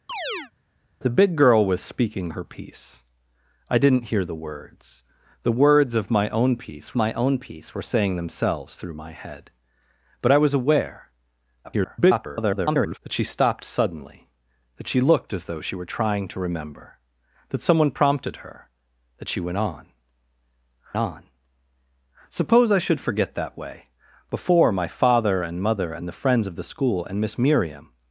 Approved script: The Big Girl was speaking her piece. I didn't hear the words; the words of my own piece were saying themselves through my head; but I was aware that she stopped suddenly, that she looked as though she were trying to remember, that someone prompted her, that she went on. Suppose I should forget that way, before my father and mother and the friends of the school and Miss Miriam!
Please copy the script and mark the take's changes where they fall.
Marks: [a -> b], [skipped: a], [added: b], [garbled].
The Big Girl was speaking her piece. I didn't hear the words; the words of my own piece [added: my own piece] were saying themselves through my head; but I was aware [garbled] that she stopped suddenly, that she looked as though she were trying to remember, that someone prompted her, that she went on. [added: on] Suppose I should forget that way, before my father and mother and the friends of the school and Miss Miriam!